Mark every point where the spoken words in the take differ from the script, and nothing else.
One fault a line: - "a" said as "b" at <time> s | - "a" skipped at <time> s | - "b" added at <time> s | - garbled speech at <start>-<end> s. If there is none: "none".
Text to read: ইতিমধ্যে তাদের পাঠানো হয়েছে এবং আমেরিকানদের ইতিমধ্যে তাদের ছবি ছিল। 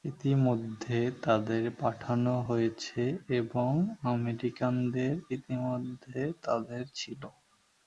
- "ছবি" skipped at 6.8 s